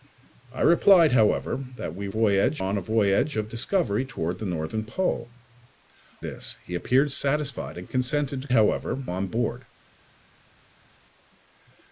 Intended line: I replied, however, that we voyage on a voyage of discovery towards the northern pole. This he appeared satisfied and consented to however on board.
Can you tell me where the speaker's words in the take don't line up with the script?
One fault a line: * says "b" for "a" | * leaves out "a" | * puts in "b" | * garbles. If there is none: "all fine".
all fine